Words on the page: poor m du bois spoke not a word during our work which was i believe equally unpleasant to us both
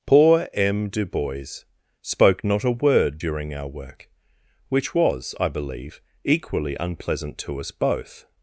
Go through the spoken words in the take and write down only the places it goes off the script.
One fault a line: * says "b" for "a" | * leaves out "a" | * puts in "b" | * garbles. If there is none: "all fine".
all fine